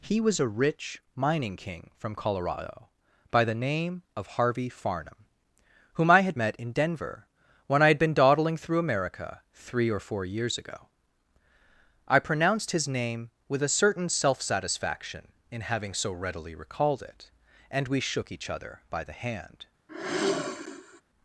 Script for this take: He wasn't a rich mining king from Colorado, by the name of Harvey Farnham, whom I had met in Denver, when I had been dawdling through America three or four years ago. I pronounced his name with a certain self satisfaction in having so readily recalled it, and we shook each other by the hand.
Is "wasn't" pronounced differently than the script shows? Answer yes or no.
yes